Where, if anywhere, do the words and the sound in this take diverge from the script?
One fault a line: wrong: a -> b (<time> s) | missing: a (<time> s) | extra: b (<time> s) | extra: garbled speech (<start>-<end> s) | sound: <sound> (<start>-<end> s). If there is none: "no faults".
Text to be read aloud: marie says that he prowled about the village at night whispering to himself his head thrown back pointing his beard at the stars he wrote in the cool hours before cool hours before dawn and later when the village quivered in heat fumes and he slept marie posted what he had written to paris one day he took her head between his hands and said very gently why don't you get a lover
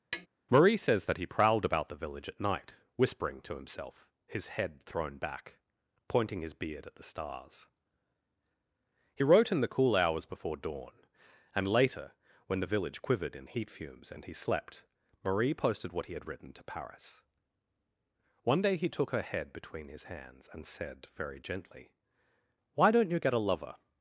sound: tap (0.1-0.3 s)
missing: cool hours before (10.6 s)